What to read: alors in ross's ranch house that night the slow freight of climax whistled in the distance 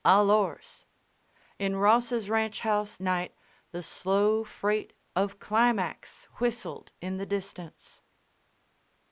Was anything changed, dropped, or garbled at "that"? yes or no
yes